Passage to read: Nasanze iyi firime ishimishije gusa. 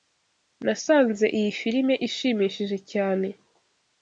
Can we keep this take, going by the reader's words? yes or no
no